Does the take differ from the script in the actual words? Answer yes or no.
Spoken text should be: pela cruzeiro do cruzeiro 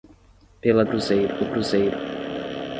no